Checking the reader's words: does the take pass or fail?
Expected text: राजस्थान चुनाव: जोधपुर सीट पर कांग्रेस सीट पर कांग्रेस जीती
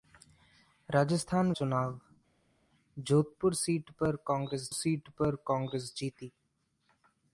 pass